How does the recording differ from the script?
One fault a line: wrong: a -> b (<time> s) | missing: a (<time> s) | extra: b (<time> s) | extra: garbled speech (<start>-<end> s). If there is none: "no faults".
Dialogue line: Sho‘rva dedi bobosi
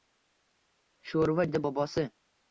no faults